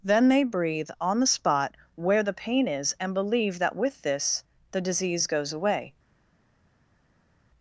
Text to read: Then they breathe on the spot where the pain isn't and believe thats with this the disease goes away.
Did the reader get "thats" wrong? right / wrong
wrong